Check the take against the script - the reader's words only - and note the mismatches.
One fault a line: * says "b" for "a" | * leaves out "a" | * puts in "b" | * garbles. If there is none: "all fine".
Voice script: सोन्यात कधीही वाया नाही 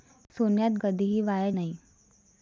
all fine